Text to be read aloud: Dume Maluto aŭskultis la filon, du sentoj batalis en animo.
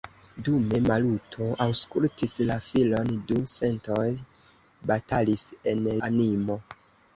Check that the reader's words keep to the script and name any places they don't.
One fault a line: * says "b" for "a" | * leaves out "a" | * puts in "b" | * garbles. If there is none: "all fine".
all fine